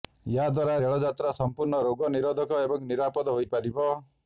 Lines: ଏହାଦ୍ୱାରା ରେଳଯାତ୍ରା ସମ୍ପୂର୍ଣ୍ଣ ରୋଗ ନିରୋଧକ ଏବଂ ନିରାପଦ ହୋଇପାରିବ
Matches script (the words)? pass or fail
pass